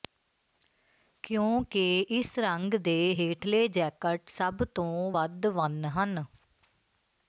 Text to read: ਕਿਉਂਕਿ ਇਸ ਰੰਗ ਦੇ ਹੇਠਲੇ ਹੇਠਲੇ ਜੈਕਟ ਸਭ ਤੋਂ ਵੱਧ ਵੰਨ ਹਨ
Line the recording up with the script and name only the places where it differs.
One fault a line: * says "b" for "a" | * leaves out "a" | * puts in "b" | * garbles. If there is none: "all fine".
* leaves out "ਹੇਠਲੇ"